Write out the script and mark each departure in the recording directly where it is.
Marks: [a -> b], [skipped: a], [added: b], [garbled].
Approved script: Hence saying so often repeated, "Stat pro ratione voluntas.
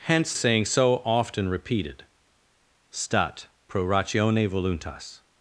Hence saying so often repeated, "Stat pro ratione voluntas.